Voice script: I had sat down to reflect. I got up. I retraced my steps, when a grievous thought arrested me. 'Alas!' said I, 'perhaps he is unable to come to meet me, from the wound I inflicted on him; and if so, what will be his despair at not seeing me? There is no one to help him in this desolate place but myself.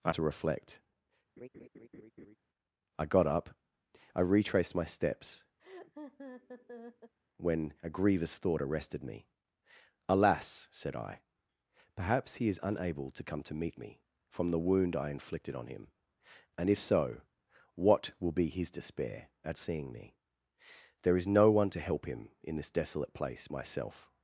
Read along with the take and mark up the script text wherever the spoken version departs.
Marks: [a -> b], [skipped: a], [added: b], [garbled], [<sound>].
I [skipped: had sat down] to reflect. [laugh] I got up. I retraced my steps, [laugh] when a grievous thought arrested me. 'Alas!' said I, 'perhaps he is unable to come to meet me, from the wound I inflicted on him; and if so, what will be his despair at [skipped: not] seeing me? There is no one to help him in this desolate place [skipped: but] myself.